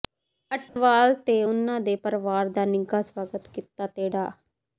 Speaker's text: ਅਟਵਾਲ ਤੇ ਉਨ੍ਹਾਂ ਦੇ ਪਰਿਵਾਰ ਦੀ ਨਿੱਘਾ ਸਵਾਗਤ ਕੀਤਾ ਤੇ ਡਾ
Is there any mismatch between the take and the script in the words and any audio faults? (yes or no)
yes